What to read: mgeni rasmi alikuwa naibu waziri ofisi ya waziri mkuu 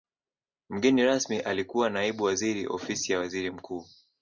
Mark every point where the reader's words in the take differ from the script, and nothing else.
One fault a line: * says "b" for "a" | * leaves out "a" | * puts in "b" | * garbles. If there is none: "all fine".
all fine